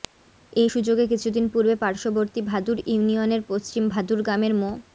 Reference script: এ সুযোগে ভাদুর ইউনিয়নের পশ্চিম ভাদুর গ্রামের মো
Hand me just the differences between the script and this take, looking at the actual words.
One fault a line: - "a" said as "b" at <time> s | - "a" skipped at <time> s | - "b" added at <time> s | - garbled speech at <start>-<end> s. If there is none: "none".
- "কিছুদিন পূর্বে পার্শ্ববর্তী" added at 1.1 s